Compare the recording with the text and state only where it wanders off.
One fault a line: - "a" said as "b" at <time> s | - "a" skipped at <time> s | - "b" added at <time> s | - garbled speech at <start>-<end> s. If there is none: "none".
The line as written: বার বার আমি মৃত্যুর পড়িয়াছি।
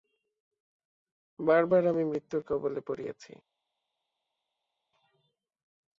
- "কবলে" added at 2.5 s